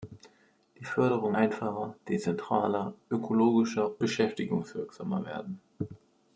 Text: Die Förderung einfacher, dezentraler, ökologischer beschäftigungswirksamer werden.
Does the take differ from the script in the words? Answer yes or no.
no